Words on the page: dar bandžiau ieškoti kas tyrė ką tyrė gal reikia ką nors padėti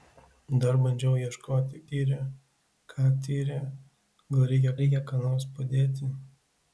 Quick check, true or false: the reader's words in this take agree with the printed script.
false